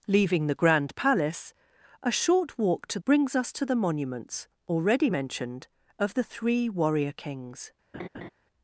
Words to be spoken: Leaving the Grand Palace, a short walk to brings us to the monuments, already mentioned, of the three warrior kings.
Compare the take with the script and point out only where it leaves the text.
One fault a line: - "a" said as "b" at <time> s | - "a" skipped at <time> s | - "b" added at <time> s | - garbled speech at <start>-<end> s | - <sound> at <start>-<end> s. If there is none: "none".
- laugh at 7.9-8.3 s